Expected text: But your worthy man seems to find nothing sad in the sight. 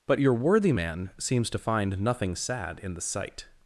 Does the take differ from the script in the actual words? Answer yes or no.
no